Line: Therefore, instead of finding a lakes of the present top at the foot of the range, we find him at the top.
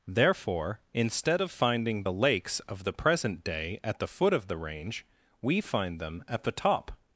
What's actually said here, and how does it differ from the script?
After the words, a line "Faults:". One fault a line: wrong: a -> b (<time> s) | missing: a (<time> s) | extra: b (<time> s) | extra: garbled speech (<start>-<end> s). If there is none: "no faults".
Therefore, instead of finding the lakes of the present day at the foot of the range, we find them at the top.
Faults:
wrong: a -> the (2.0 s)
wrong: top -> day (3.4 s)
wrong: him -> them (6.0 s)